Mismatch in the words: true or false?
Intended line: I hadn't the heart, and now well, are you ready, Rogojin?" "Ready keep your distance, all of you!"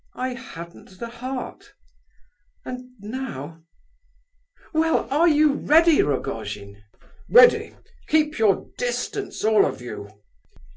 false